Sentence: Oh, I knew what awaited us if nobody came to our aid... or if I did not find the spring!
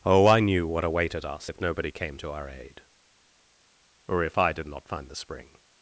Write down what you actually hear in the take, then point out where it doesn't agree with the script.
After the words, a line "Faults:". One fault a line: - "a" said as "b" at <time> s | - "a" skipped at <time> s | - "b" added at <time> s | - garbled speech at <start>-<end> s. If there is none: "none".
Oh, I knew what awaited us if nobody came to our aid... or if I did not find the spring!
Faults:
none